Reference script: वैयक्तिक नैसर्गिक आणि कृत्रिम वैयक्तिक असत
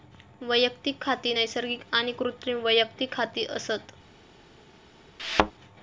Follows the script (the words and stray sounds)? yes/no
no